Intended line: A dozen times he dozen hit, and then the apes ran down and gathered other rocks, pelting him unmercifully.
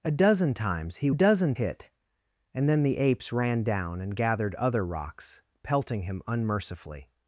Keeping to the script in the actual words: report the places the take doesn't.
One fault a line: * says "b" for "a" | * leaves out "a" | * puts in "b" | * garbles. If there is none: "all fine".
all fine